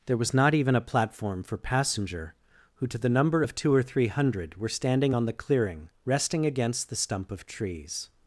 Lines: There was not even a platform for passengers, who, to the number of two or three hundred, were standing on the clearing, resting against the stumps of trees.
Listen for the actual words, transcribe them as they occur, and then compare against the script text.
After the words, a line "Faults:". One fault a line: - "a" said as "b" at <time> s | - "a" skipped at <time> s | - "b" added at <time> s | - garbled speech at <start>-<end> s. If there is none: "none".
There was not even a platform for passenger, who, to the number of two or three hundred, were standing on the clearing, resting against the stump of trees.
Faults:
- "passengers" said as "passenger" at 1.6 s
- "stumps" said as "stump" at 7.0 s